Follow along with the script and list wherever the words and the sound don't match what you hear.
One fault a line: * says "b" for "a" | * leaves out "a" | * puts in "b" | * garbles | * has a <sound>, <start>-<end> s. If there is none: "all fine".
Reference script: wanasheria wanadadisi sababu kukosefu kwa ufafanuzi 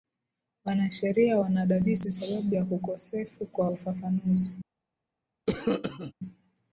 * puts in "ya"
* has a cough, 5.5-6.1 s